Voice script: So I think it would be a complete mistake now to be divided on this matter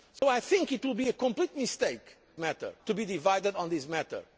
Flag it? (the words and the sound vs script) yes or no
yes